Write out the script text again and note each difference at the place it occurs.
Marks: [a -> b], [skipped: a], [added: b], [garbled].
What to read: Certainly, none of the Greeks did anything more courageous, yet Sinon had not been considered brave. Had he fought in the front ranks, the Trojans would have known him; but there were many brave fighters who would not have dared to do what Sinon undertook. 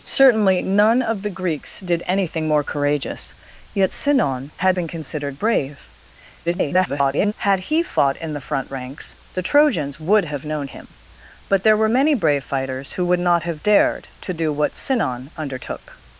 Certainly, none of the Greeks did anything more courageous, yet Sinon had [skipped: not] been considered brave. [garbled] Had he fought in the front ranks, the Trojans would have known him; but there were many brave fighters who would not have dared to do what Sinon undertook.